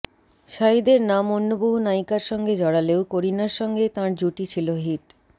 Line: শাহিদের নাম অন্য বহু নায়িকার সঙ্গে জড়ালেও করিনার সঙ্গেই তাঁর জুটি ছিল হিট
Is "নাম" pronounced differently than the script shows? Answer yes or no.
no